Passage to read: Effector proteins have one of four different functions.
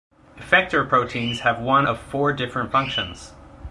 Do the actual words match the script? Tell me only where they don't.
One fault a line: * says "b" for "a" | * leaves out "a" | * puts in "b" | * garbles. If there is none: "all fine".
all fine